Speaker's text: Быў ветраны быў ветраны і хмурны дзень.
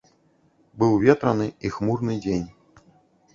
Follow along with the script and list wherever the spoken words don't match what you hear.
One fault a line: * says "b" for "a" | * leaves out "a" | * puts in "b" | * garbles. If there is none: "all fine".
* leaves out "быў ветраны"